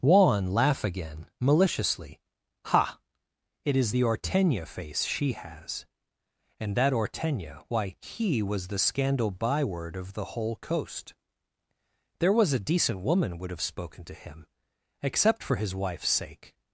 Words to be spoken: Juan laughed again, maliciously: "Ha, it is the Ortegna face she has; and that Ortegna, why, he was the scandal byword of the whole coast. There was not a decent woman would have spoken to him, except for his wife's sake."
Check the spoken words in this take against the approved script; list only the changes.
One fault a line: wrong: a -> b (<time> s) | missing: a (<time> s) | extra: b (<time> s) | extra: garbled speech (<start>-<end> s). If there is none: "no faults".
wrong: laughed -> laugh (0.5 s)
missing: not (12.5 s)